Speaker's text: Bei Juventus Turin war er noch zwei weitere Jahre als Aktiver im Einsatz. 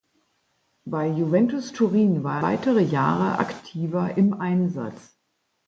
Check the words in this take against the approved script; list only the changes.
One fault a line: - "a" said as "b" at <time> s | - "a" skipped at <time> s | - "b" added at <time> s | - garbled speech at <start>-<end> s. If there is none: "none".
- "noch zwei" skipped at 2.4 s
- "als" skipped at 3.4 s